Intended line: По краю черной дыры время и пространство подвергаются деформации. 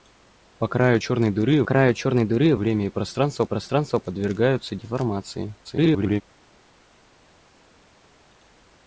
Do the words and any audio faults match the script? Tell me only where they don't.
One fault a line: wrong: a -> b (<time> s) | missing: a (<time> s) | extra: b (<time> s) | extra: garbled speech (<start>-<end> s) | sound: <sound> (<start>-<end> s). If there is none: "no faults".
extra: краю черной дыры (1.6 s)
extra: пространство (3.4 s)
extra: garbled speech (5.6-6.2 s)